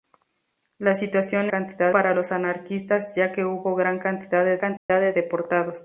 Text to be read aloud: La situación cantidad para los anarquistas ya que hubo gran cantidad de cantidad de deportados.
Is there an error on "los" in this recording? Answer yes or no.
no